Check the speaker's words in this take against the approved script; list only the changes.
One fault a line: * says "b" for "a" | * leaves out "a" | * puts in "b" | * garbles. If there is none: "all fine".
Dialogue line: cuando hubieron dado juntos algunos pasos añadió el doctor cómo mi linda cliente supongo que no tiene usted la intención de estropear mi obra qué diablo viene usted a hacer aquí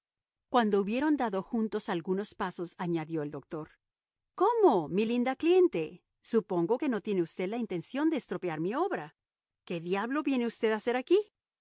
all fine